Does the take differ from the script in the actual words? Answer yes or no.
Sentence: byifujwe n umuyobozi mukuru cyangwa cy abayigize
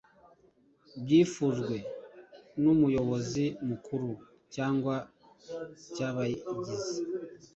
no